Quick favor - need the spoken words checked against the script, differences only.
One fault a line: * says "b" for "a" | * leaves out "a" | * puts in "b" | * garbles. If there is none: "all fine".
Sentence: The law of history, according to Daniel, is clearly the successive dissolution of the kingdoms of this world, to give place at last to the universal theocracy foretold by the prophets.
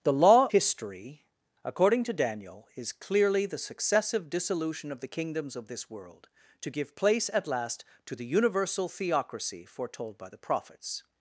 * leaves out "of"